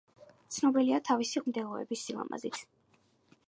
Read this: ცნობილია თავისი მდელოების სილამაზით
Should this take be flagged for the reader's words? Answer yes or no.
no